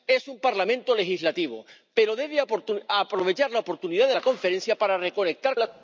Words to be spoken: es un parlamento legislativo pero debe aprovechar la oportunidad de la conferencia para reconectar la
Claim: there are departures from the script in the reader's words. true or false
false